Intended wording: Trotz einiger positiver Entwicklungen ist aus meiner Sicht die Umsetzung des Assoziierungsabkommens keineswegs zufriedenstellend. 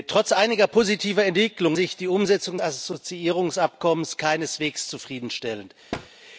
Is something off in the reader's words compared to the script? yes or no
yes